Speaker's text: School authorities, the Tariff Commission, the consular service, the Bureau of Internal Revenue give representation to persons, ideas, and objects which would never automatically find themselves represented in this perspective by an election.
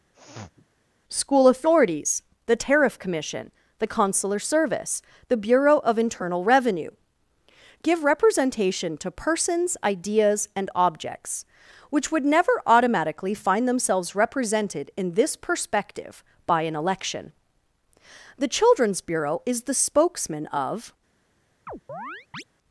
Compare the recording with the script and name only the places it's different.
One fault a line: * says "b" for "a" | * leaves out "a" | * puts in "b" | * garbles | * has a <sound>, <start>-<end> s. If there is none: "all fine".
* has a sniff, 0.1-0.7 s
* puts in "The Children's Bureau is the spokesman of"
* has a chirp, 21.7-22.4 s